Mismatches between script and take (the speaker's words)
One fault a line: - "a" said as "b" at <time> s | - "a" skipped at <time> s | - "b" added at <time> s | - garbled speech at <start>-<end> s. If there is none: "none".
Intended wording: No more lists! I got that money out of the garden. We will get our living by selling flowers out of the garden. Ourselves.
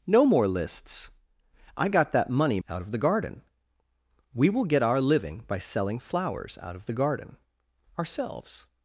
none